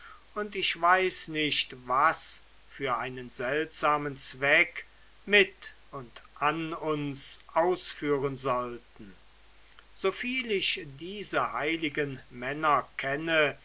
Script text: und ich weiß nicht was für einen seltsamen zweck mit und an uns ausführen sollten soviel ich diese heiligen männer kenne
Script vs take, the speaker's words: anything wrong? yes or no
no